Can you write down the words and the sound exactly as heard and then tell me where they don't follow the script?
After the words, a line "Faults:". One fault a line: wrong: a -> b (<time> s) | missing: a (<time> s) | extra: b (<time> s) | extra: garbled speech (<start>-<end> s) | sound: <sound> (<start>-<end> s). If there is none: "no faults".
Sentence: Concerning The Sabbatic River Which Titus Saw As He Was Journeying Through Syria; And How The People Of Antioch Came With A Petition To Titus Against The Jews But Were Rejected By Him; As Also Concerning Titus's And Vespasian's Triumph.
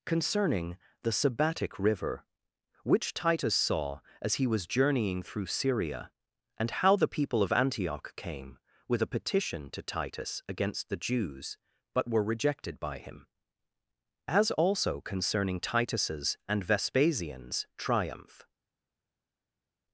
Concerning The Sabbatic River Which Titus Saw As He Was Journeying Through Syria; And How The People Of Antioch Came With A Petition To Titus Against The Jews But Were Rejected By Him; As Also Concerning Titus's And Vespasian's Triumph.
Faults:
no faults